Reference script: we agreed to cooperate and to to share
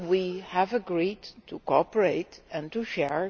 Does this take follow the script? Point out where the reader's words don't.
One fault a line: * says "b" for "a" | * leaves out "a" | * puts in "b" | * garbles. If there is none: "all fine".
* puts in "have"
* leaves out "to"